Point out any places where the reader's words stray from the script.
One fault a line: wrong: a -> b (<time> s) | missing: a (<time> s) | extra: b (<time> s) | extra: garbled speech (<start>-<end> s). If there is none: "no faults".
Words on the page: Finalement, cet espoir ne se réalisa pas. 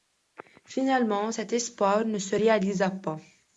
no faults